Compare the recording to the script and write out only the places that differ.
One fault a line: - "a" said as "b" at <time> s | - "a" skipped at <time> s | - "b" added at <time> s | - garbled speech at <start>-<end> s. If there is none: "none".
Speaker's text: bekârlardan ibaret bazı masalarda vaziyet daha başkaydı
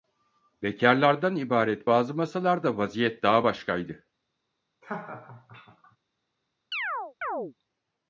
none